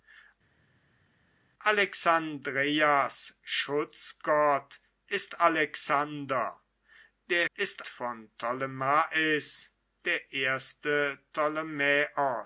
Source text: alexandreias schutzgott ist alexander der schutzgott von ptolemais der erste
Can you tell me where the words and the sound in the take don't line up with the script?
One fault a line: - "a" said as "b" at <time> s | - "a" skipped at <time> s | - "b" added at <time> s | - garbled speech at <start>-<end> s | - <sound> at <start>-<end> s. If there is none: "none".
- "schutzgott" said as "ist" at 7.5 s